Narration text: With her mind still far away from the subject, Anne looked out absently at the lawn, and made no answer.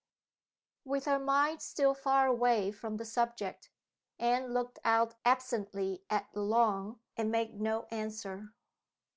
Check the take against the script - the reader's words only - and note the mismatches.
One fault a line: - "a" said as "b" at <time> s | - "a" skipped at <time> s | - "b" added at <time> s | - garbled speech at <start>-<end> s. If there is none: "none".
none